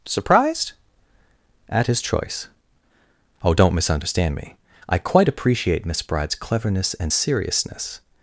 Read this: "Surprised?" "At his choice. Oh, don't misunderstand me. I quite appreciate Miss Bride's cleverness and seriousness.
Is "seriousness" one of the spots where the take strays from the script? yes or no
no